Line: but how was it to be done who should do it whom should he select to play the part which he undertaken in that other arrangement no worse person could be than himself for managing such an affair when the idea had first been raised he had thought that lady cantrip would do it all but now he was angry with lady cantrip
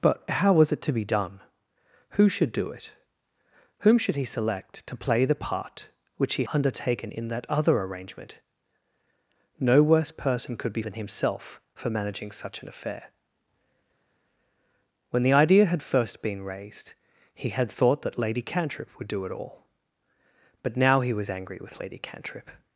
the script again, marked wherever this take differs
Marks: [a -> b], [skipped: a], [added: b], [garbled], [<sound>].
but how was it to be done who should do it whom should he select to play the part which he undertaken in that other arrangement no worse person could be than himself for managing such an affair when the idea had first been raised he had thought that lady cantrip would do it all but now he was angry with lady cantrip